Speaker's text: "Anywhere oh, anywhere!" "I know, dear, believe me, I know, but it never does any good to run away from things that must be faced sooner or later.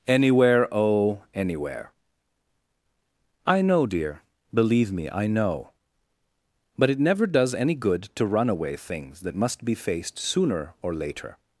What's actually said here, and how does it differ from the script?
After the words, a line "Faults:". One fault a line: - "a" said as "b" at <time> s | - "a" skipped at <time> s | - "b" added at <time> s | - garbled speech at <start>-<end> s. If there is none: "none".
"Anywhere oh, anywhere!" "I know, dear, believe me, I know, but it never does any good to run away things that must be faced sooner or later.
Faults:
- "from" skipped at 8.8 s